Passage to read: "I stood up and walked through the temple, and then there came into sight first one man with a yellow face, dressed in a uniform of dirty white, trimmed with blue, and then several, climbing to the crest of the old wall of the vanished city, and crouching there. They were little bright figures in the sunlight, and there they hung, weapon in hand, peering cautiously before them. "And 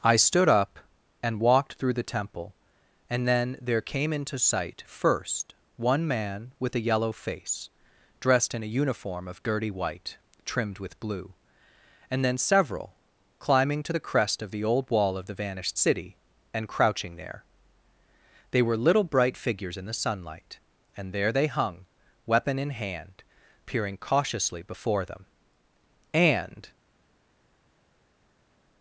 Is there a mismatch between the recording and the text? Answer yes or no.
no